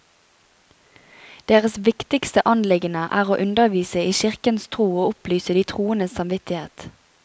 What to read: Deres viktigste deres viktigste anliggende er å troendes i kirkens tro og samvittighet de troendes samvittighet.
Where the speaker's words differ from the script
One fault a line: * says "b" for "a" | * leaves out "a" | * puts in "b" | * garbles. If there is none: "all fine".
* leaves out "deres viktigste"
* says "undervise" for "troendes"
* says "opplyse" for "samvittighet"